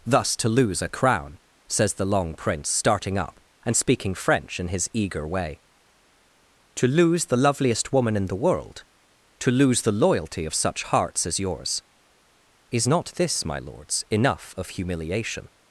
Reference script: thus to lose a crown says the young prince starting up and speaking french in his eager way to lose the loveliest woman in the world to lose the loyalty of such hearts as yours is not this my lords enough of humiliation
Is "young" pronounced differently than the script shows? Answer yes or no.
yes